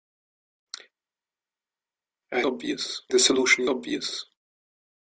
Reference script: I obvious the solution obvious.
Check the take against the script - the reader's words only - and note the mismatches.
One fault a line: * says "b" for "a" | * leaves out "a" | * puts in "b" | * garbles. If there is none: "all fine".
all fine